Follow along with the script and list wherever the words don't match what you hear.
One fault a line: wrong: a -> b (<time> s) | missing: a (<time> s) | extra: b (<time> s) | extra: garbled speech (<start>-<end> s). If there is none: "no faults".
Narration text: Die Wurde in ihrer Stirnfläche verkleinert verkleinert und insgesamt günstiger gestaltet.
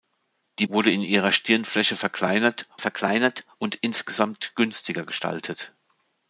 no faults